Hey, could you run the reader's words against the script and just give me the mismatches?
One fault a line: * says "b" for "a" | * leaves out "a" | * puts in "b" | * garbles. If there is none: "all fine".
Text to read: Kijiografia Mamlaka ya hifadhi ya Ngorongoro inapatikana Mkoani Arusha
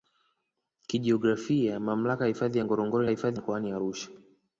* says "hifadhi" for "inapatikana"